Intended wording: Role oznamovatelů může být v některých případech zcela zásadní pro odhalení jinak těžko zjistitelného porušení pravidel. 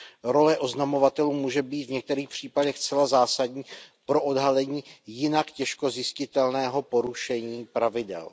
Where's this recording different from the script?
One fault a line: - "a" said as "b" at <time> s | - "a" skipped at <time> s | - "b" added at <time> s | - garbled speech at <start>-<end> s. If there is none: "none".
none